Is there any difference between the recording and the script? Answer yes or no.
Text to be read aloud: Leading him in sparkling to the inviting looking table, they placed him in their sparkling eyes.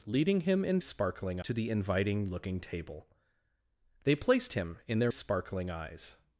no